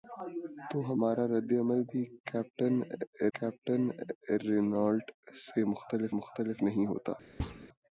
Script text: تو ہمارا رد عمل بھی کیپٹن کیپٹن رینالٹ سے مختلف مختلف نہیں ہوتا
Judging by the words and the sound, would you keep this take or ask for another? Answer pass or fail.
fail